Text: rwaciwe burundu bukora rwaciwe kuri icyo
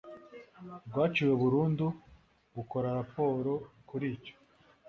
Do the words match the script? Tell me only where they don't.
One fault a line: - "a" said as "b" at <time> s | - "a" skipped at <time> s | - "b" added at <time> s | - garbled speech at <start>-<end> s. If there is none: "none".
- "rwaciwe" said as "raporo" at 3.0 s